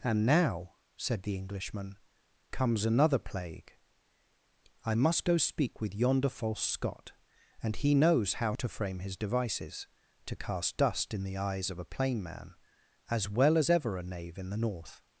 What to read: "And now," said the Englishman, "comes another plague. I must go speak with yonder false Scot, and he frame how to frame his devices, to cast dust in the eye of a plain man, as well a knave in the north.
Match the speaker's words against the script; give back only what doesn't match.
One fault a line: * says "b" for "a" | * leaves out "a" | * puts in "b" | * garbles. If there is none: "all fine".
* says "knows" for "frame"
* says "eyes" for "eye"
* puts in "as ever"